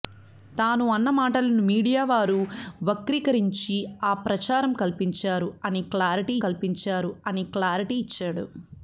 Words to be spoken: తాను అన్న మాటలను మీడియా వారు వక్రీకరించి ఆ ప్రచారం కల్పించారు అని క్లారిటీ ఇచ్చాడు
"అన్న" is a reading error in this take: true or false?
false